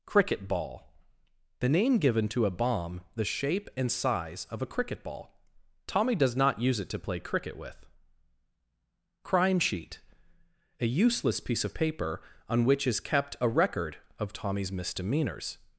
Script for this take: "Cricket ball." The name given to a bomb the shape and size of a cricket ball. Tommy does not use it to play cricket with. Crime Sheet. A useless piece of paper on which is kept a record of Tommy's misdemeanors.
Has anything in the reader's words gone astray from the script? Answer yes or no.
no